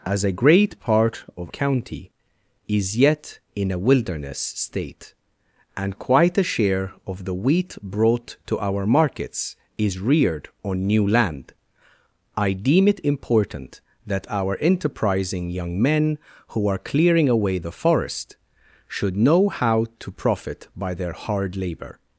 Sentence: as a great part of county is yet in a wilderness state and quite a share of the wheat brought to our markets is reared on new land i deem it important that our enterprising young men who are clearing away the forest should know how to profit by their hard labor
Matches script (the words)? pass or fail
pass